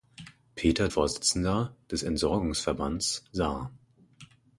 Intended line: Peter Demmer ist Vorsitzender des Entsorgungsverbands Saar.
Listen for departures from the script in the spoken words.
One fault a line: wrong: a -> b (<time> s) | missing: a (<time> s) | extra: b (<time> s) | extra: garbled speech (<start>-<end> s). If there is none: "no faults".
missing: Demmer ist (0.9 s)